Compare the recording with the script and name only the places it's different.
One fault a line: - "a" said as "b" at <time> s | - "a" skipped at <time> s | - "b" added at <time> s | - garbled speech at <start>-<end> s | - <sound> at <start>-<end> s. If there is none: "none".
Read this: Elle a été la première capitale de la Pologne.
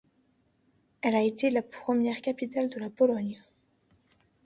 none